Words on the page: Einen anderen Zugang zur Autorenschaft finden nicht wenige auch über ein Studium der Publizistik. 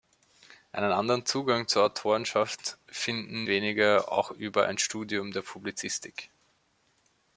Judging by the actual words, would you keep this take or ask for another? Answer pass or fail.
fail